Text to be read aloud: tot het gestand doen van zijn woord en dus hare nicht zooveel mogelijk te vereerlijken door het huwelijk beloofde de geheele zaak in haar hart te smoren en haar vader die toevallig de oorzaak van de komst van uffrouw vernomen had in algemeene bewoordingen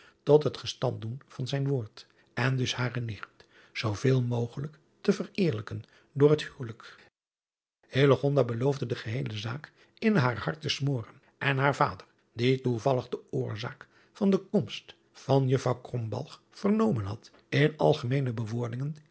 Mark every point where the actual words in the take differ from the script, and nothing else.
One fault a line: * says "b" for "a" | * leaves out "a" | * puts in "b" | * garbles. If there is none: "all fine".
all fine